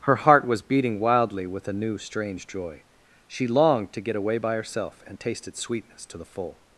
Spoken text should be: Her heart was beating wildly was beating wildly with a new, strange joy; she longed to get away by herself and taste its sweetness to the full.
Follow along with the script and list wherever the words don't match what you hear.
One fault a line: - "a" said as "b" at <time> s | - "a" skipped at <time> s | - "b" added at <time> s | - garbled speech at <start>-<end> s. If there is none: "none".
- "was beating wildly" skipped at 1.4 s